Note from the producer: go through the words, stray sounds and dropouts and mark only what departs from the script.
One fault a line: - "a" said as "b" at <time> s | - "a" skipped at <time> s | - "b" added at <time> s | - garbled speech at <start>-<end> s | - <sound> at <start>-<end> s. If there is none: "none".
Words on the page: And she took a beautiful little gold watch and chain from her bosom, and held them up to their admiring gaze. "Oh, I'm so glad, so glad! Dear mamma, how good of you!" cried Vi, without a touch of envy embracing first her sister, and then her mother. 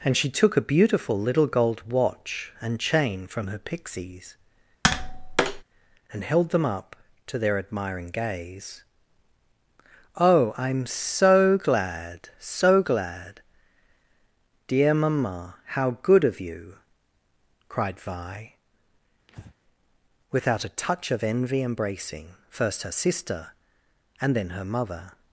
- "bosom" said as "pixies" at 3.6 s
- tap at 4.8-5.6 s
- breath at 19.3-19.5 s